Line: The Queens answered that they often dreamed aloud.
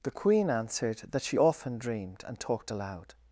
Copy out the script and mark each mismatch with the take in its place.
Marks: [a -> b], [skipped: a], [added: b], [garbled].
The [Queens -> Queen] answered that [they -> she] often dreamed [added: and talked] aloud.